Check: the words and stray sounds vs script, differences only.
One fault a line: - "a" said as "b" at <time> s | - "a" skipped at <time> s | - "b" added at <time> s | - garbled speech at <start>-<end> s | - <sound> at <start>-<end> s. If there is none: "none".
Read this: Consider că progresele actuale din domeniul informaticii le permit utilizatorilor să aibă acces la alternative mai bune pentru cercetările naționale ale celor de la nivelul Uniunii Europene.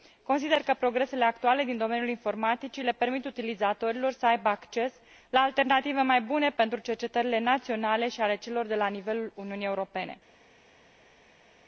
- "și" added at 8.1 s